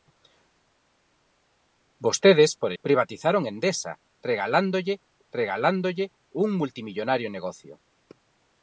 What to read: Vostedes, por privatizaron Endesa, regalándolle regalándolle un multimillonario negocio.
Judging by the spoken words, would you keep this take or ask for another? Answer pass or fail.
pass